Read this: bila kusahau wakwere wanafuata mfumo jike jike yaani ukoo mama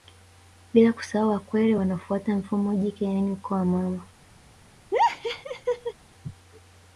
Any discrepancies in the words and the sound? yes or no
yes